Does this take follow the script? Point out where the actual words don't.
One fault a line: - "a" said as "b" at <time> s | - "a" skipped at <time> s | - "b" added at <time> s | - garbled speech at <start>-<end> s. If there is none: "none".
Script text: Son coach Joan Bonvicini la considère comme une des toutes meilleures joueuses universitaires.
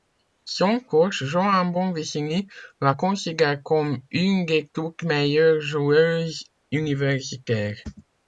none